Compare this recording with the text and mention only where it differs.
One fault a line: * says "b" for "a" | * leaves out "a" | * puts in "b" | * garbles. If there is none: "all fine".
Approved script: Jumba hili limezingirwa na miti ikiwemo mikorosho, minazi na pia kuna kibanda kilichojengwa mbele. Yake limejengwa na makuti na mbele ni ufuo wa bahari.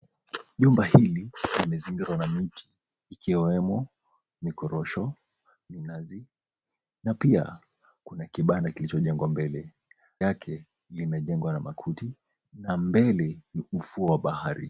all fine